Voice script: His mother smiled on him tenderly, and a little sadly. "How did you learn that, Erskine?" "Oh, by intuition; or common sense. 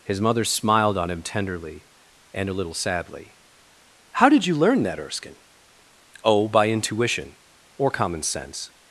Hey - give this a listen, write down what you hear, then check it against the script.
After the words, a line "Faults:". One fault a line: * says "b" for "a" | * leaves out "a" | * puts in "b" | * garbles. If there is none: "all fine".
His mother smiled on him tenderly, and a little sadly. "How did you learn that, Erskine?" "Oh, by intuition; or common sense.
Faults:
all fine